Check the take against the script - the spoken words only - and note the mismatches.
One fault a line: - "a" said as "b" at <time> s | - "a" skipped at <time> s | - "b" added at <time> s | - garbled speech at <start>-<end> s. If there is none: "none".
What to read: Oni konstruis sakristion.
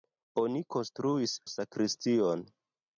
none